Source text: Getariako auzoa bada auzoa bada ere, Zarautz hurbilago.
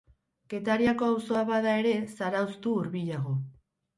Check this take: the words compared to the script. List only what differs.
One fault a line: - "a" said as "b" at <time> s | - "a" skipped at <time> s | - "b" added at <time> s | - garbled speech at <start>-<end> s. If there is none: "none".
- "auzoa bada" skipped at 1.8 s
- "du" added at 2.6 s